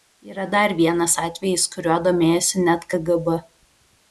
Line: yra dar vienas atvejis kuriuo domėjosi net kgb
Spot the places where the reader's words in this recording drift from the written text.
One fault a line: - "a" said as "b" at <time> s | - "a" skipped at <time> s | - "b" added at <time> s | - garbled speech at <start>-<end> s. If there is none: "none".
none